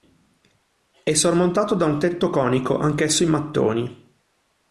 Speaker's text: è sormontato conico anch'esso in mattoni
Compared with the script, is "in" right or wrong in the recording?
right